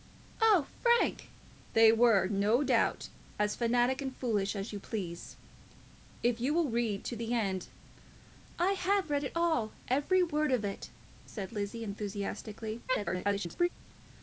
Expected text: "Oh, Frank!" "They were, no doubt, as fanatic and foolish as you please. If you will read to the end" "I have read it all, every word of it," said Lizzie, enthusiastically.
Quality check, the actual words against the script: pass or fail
fail